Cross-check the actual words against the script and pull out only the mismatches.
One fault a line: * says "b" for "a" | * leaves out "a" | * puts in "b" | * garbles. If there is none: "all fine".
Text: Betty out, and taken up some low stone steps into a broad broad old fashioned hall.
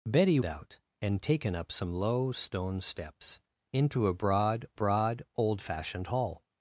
all fine